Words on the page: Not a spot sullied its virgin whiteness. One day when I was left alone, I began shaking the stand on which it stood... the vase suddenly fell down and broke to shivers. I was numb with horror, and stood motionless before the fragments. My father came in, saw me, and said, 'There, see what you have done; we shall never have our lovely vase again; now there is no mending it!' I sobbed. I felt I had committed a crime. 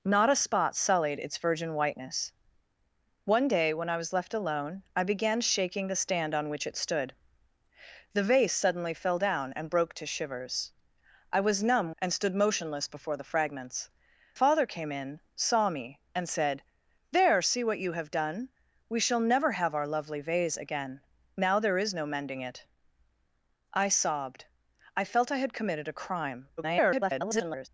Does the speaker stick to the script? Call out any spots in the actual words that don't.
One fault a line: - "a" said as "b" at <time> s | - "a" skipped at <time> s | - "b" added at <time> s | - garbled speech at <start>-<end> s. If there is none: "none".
- "with horror" skipped at 11.9 s
- "My" skipped at 13.9 s
- garbled speech at 26.6-27.7 s